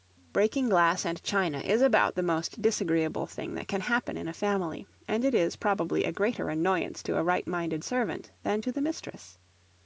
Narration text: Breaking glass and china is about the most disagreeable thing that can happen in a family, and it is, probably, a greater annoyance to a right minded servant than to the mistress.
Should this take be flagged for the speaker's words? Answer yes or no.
no